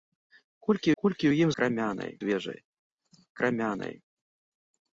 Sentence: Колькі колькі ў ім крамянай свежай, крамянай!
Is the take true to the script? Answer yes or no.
yes